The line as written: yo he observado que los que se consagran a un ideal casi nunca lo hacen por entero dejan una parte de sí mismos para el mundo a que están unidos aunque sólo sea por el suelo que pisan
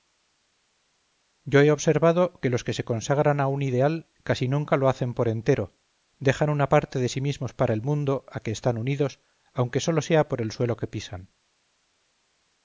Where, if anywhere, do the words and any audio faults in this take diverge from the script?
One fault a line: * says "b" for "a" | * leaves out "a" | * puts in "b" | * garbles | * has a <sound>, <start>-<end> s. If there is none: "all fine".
all fine